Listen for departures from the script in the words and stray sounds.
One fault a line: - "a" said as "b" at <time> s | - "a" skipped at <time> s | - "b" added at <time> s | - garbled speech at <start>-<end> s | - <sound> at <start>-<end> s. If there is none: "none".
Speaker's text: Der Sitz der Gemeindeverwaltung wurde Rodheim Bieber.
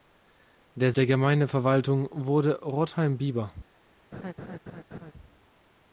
- "Sitz" skipped at 0.9 s
- laugh at 4.1-5.1 s